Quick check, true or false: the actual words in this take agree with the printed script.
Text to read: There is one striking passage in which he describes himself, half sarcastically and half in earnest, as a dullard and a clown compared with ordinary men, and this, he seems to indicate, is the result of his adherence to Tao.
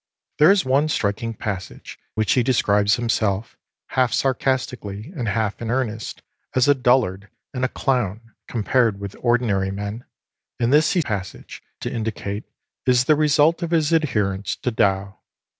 false